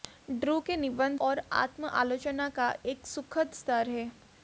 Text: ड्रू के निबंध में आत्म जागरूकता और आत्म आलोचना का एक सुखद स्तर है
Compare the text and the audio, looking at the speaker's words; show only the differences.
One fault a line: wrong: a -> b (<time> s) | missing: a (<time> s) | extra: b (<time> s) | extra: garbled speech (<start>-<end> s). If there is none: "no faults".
missing: में आत्म जागरूकता (1.2 s)